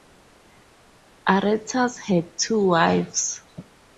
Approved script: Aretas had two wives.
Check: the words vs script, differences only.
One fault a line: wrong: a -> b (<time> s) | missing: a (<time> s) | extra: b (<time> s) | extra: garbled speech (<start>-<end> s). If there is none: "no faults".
no faults